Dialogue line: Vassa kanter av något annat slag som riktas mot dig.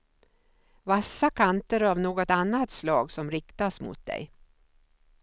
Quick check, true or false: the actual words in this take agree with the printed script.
true